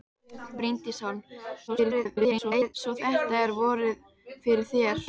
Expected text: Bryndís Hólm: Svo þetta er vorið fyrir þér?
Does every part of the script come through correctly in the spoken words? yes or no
no